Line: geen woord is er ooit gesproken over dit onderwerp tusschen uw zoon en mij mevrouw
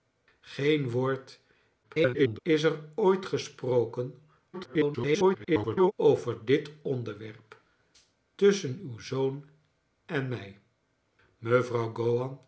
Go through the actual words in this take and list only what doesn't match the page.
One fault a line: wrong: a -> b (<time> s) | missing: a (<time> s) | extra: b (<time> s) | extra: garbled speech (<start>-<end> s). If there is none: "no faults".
extra: garbled speech (1.8-2.4 s)
extra: garbled speech (4.5-5.9 s)